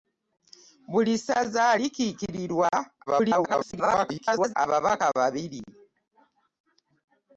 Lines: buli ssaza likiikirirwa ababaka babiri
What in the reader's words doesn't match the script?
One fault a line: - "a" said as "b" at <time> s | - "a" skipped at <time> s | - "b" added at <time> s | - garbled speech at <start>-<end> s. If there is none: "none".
- garbled speech at 3.1-4.5 s